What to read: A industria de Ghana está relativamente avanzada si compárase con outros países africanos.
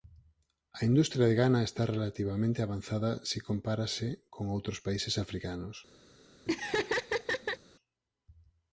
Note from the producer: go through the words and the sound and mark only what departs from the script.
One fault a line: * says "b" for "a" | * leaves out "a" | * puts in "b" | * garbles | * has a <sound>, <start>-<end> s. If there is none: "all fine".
* has a laugh, 6.5-7.6 s